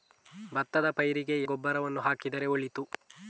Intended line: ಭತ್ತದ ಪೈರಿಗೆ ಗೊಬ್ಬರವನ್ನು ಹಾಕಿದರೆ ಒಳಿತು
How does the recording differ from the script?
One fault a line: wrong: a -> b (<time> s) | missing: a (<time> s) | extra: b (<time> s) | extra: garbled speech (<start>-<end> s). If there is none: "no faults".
no faults